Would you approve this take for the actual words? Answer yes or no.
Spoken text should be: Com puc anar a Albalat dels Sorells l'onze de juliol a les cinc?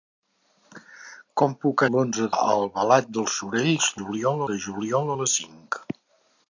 no